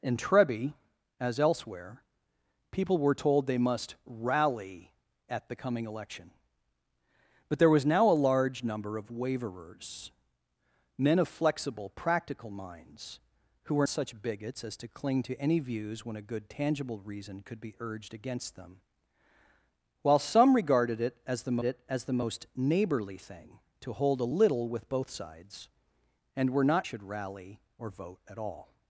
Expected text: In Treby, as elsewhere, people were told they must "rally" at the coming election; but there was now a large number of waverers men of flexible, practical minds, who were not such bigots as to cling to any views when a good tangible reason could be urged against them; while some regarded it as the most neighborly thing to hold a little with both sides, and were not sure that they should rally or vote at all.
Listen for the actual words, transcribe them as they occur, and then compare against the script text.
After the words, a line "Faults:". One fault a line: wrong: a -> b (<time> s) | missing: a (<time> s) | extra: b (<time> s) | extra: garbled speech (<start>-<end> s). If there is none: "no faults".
In Treby, as elsewhere, people were told they must "rally" at the coming election; but there was now a large number of waverers men of flexible, practical minds, who were such bigots as to cling to any views when a good tangible reason could be urged against them; while some regarded it as the it as the most neighborly thing to hold a little with both sides, and were not should rally or vote at all.
Faults:
missing: not (13.9 s)
extra: it as the (21.6 s)
missing: sure that they (26.9 s)